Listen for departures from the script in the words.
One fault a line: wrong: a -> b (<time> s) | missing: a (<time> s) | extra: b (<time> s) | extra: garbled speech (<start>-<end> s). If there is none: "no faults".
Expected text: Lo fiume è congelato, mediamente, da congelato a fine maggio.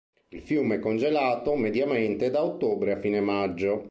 wrong: Lo -> Il (0.3 s)
wrong: congelato -> ottobre (2.4 s)